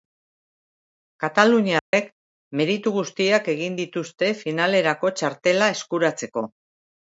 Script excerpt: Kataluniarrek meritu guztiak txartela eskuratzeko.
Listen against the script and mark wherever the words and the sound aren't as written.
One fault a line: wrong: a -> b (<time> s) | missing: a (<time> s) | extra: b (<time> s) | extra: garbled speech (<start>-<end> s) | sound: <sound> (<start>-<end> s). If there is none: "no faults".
sound: dropout (1.8-1.9 s)
extra: egin dituzte finalerako (3.5 s)